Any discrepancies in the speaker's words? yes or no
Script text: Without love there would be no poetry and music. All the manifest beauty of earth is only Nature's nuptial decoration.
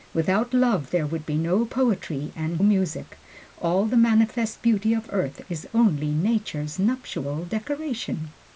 no